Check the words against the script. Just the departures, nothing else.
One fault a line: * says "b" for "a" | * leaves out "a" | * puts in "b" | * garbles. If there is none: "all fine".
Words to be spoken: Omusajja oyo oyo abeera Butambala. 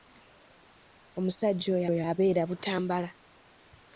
all fine